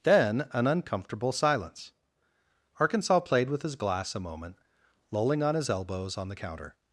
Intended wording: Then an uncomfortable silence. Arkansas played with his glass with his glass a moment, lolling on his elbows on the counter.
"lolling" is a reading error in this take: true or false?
false